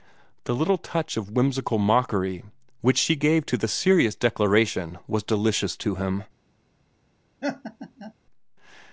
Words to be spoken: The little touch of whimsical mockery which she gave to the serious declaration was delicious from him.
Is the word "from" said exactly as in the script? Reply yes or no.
no